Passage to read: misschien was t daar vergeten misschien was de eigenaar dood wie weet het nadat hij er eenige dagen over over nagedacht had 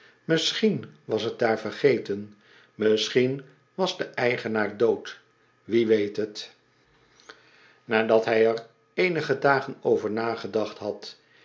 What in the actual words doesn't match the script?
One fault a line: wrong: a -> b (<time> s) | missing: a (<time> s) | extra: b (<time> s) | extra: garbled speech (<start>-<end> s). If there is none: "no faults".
missing: over (10.1 s)